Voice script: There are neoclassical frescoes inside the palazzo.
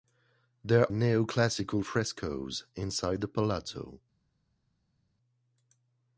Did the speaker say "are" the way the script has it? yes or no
no